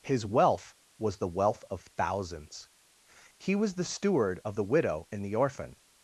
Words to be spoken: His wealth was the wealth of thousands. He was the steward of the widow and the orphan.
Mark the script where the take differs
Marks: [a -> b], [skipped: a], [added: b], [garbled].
His wealth was the wealth of thousands. He was the steward of the widow and the orphan.